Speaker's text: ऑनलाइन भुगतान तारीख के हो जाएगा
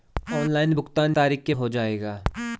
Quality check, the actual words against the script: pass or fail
pass